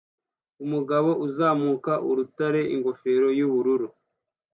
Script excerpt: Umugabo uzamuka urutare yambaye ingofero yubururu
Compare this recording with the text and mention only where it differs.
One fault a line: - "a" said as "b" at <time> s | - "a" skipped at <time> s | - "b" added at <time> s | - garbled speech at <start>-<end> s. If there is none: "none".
- "yambaye" skipped at 2.6 s